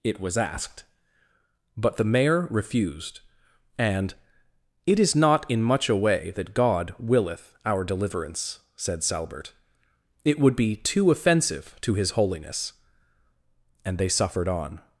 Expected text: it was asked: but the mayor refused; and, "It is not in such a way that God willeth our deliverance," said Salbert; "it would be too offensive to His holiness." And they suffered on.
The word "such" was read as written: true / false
false